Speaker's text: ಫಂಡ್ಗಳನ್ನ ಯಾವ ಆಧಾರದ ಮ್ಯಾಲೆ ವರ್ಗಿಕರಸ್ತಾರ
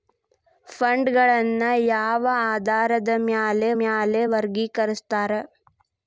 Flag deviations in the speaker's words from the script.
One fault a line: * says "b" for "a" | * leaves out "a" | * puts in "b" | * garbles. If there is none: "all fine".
* puts in "ಮ್ಯಾಲೆ"